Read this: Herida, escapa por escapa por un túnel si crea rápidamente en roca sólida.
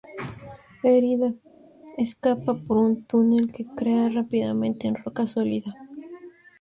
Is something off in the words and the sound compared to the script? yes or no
yes